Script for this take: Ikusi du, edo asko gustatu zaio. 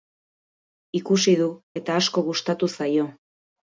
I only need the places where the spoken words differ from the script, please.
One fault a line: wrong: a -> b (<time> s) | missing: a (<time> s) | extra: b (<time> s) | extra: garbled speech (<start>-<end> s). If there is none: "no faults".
wrong: edo -> eta (1.8 s)